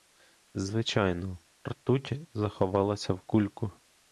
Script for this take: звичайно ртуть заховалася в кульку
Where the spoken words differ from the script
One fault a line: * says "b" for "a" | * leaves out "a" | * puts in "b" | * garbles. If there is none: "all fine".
all fine